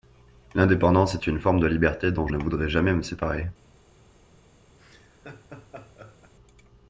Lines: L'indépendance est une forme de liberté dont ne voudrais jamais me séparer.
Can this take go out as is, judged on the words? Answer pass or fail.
pass